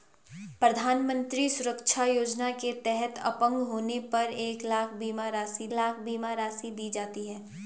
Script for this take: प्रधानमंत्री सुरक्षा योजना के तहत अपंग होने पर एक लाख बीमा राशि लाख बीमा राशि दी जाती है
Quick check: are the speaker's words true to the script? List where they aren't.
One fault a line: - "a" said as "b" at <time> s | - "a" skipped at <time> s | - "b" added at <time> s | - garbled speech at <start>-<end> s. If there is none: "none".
none